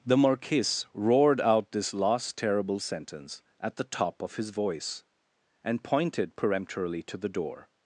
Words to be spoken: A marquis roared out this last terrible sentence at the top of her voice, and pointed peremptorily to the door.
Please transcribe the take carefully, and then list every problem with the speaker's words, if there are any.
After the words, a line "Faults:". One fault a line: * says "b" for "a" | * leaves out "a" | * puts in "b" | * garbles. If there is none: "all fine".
The marquis roared out this last terrible sentence at the top of his voice, and pointed peremptorily to the door.
Faults:
* says "The" for "A"
* says "his" for "her"